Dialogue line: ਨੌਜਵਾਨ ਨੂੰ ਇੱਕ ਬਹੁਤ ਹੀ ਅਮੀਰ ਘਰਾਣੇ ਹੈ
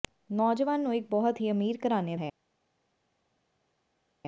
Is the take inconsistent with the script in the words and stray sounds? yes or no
no